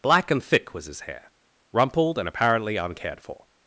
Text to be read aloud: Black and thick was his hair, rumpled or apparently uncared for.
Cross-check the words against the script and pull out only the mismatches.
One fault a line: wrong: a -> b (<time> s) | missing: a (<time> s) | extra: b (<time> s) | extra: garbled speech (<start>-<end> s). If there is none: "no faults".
wrong: or -> and (2.2 s)